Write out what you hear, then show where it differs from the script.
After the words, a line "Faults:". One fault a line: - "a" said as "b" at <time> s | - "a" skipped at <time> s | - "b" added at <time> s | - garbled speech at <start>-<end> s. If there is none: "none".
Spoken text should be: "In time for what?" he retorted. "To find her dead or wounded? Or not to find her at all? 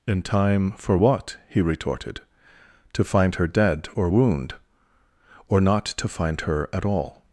"In time for what?" he retorted. "To find her dead or wound? Or not to find her at all?
Faults:
- "wounded" said as "wound" at 4.1 s